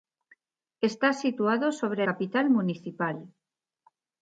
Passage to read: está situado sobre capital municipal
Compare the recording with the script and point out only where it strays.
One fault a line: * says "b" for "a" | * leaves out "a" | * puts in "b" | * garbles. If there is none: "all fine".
all fine